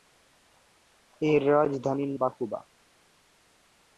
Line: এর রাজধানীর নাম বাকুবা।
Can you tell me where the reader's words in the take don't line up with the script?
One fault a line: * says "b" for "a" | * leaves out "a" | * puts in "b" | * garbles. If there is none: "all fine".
* leaves out "নাম"